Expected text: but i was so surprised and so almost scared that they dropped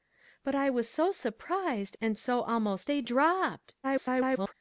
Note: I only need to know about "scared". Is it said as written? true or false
false